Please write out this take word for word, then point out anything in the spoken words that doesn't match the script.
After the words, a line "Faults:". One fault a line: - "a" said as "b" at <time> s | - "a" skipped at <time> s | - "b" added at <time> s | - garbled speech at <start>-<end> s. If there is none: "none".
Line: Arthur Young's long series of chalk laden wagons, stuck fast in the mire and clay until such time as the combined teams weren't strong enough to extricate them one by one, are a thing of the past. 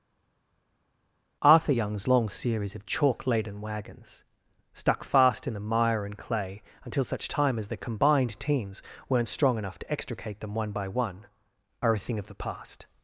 Arthur Young's long series of chalk laden wagons, stuck fast in the mire and clay until such time as the combined teams weren't strong enough to extricate them one by one, are a thing of the past.
Faults:
none